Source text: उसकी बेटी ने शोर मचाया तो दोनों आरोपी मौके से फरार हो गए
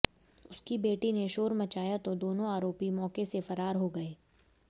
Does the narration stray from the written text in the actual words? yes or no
no